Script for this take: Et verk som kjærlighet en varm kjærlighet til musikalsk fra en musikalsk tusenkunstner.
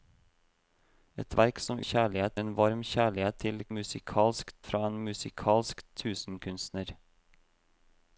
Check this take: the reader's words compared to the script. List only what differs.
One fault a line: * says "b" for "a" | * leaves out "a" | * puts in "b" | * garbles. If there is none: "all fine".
all fine